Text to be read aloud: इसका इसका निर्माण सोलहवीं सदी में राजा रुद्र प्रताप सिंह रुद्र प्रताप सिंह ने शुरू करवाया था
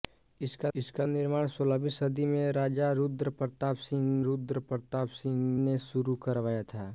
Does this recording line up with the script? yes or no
yes